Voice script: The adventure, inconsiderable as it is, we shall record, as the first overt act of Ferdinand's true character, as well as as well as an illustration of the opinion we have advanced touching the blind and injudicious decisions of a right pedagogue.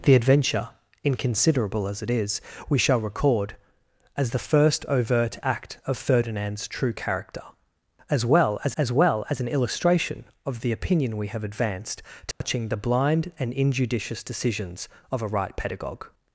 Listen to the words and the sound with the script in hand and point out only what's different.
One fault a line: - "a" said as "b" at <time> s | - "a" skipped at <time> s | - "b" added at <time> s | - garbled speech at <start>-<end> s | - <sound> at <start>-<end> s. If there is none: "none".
- dropout at 12.3-12.4 s